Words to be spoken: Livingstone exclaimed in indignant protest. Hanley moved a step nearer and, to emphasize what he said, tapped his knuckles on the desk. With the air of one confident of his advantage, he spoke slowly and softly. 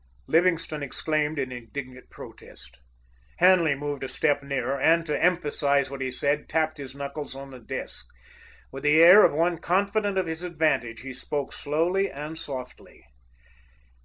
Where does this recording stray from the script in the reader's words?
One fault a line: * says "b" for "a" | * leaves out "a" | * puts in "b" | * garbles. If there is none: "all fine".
all fine